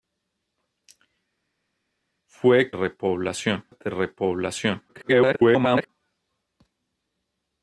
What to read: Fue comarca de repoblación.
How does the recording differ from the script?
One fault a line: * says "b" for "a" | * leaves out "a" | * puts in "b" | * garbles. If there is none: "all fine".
* says "repoblación" for "comarca"
* garbles